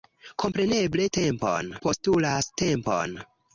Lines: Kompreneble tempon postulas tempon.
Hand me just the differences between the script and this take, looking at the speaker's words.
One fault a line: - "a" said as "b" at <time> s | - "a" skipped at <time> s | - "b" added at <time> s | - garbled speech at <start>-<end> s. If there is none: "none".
none